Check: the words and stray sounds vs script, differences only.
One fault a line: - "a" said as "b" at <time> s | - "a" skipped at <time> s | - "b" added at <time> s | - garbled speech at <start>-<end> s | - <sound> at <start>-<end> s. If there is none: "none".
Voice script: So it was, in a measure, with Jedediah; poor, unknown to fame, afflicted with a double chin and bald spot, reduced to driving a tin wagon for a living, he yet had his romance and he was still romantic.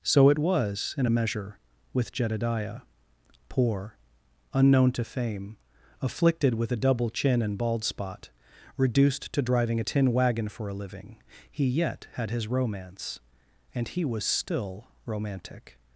none